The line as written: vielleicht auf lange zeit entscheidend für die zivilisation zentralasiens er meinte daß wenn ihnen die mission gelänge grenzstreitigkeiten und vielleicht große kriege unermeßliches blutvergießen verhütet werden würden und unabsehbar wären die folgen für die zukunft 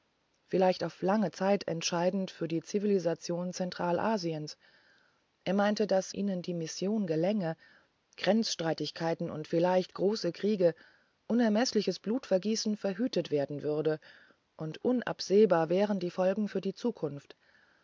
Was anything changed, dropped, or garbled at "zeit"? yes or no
no